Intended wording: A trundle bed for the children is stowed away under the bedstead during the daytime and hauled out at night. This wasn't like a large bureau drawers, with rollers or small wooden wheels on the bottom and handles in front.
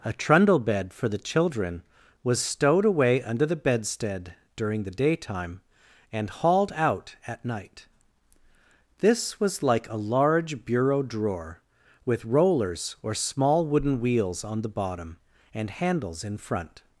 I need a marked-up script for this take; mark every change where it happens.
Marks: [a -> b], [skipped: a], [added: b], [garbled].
A trundle bed for the children [is -> was] stowed away under the bedstead during the daytime and hauled out at night. This [wasn't -> was] like a large bureau [drawers, -> drawer] with rollers or small wooden wheels on the bottom and handles in front.